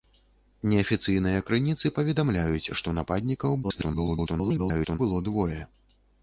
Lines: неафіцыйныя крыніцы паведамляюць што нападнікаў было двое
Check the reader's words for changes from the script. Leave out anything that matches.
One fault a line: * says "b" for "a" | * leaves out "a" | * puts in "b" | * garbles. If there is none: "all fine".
* garbles